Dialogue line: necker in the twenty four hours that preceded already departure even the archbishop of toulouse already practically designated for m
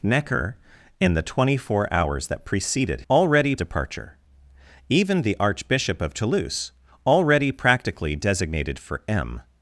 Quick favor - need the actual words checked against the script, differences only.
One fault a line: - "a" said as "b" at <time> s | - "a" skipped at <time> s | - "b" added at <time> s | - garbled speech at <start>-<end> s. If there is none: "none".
none